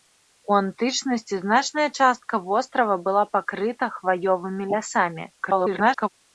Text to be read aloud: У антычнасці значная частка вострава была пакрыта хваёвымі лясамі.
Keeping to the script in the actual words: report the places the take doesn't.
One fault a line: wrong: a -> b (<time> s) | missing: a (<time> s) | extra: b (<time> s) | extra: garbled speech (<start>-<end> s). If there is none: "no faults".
extra: garbled speech (5.4-6.1 s)